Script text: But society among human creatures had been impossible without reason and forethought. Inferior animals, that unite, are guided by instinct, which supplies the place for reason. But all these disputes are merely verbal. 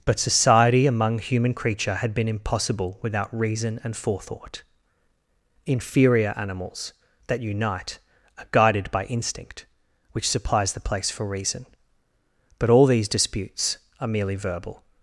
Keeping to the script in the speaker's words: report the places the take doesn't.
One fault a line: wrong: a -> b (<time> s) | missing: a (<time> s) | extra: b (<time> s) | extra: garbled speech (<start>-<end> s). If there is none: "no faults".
wrong: creatures -> creature (1.5 s)